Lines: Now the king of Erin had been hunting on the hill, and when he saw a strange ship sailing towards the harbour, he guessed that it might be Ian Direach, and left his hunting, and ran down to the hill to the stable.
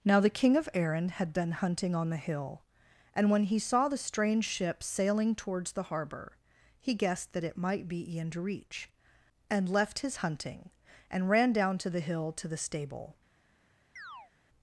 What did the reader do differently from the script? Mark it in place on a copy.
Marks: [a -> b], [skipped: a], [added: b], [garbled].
Now the king of Erin had been hunting on the hill, and when he saw [a -> the] strange ship sailing towards the harbour, he guessed that it might be Ian Direach, and left his hunting, and ran down to the hill to the stable.